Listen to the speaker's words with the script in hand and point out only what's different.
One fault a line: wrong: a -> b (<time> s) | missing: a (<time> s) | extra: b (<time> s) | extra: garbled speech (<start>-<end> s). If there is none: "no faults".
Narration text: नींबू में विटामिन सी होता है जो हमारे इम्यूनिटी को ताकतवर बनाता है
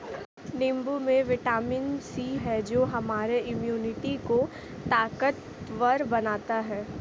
missing: होता (2.4 s)